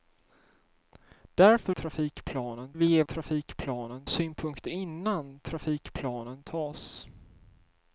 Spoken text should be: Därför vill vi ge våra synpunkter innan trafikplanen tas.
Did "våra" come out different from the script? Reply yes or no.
yes